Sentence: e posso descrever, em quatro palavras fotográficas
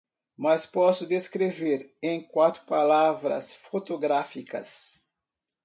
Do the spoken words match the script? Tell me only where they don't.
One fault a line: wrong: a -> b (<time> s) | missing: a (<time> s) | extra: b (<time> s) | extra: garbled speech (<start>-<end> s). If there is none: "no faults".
wrong: e -> mas (0.3 s)